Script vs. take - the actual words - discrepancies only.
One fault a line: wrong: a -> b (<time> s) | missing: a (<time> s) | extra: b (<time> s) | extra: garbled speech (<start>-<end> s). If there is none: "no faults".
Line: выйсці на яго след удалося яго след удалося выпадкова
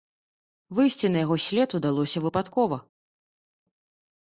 missing: яго след удалося (2.2 s)